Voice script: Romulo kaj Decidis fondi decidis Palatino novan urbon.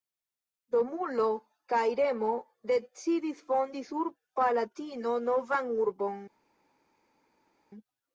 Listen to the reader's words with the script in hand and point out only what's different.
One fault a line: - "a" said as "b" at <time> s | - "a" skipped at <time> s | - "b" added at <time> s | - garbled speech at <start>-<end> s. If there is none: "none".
- "Remo" added at 2.0 s
- "decidis" said as "sur" at 3.9 s